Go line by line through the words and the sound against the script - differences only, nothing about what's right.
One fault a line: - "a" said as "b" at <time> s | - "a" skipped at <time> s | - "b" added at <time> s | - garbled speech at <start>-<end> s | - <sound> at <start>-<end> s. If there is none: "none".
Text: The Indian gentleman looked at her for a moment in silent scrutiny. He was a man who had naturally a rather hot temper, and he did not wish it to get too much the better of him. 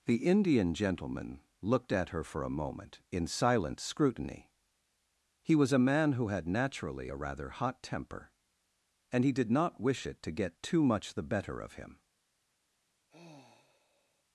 - sigh at 13.1-14.2 s